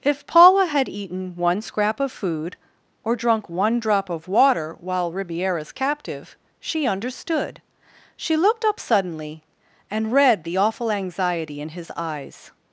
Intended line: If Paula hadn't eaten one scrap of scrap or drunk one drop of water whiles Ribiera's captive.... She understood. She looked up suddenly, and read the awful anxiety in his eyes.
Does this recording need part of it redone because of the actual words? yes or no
yes